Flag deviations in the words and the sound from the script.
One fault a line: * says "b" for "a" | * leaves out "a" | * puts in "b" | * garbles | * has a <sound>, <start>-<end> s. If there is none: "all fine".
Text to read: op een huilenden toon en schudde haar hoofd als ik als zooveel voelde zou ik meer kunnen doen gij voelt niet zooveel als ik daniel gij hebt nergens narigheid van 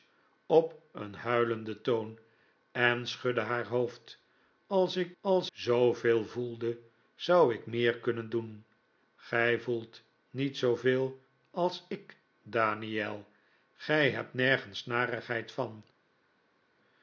all fine